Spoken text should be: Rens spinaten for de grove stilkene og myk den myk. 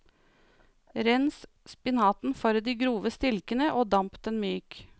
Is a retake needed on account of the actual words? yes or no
yes